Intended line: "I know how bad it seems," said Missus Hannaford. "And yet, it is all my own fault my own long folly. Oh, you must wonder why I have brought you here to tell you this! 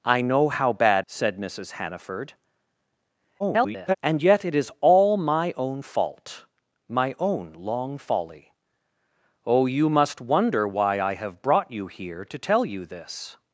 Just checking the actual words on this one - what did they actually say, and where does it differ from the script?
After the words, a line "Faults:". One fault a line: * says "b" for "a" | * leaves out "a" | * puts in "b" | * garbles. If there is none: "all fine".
"I know how bad," said Missus Hannaford. [garbled] "And yet, it is all my own fault my own long folly. Oh, you must wonder why I have brought you here to tell you this!
Faults:
* leaves out "it seems"
* garbles